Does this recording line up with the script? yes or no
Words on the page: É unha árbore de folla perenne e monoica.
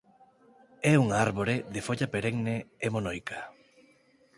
yes